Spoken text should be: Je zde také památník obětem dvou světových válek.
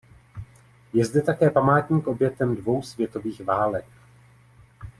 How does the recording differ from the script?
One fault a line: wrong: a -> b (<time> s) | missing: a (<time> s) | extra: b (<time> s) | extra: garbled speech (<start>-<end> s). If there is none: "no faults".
no faults